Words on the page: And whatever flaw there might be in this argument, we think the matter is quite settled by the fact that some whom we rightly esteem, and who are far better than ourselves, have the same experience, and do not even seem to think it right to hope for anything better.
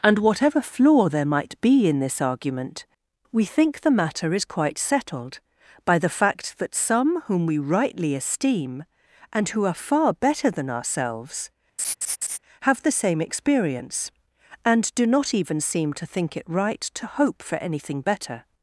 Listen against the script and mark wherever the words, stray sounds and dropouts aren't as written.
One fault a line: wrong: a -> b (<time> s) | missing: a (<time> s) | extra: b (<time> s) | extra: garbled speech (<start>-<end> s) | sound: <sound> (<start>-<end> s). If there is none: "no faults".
sound: laugh (11.8-12.4 s)